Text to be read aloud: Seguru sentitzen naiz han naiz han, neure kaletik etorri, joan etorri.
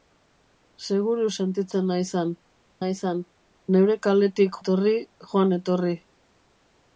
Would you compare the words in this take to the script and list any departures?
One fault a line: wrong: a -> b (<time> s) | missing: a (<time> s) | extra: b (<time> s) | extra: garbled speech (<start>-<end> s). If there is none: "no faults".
no faults